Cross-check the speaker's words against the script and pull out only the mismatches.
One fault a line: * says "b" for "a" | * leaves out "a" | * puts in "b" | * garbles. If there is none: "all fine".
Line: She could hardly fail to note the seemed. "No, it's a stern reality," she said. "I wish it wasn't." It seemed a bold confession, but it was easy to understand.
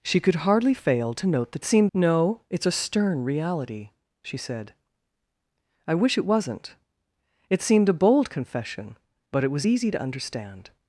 all fine